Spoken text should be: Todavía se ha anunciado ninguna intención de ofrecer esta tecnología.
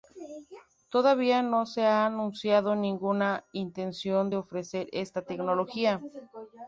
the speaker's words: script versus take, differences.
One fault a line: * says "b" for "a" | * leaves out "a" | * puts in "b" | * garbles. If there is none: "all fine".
* puts in "no"